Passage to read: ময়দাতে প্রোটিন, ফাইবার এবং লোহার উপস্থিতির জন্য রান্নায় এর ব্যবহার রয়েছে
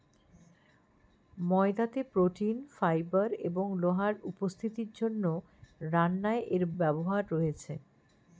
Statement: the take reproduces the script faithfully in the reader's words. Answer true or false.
true